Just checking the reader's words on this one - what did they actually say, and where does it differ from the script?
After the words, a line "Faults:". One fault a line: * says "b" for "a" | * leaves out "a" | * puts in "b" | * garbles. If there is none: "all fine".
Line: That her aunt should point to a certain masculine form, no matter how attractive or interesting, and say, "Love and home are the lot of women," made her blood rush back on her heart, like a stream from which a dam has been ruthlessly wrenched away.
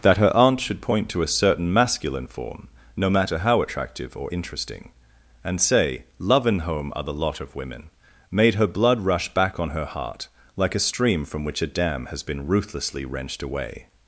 That her aunt should point to a certain masculine form, no matter how attractive or interesting, and say, "Love and home are the lot of women," made her blood rush back on her heart, like a stream from which a dam has been ruthlessly wrenched away.
Faults:
all fine